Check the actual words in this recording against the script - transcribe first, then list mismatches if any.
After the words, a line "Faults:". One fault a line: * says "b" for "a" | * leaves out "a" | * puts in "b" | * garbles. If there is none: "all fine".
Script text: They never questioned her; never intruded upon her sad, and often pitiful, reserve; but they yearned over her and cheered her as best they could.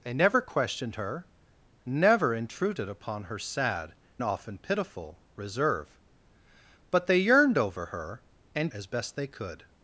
They never questioned her; never intruded upon her sad, often pitiful, reserve; but they yearned over her and as best they could.
Faults:
* leaves out "and"
* leaves out "cheered her"